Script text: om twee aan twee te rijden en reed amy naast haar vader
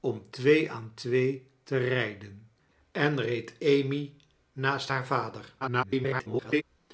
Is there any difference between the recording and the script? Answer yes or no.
yes